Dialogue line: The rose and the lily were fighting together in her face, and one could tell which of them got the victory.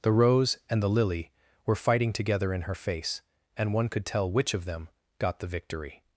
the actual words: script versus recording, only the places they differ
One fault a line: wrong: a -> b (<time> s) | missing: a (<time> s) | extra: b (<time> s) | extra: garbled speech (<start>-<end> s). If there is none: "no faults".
no faults